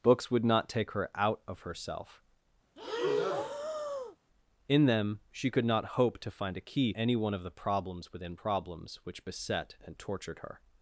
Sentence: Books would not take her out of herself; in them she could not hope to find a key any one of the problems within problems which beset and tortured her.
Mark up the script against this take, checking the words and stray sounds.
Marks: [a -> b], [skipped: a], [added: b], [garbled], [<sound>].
Books would not take her out of herself; [breath] in them she could not hope to find a key any one of the problems within problems which beset and tortured her.